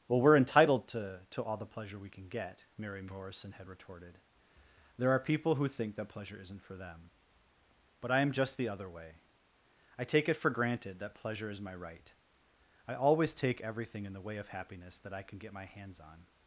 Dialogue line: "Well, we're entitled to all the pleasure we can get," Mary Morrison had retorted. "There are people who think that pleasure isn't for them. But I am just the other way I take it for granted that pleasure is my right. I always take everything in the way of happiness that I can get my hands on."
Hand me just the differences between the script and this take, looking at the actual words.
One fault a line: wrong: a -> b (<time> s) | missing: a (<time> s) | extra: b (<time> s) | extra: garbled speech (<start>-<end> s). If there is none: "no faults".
extra: to (1.3 s)